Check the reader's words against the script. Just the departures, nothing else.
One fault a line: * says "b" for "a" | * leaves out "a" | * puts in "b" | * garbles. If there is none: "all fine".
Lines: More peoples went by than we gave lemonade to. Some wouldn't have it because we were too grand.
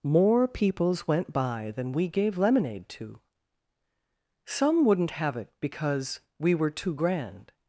all fine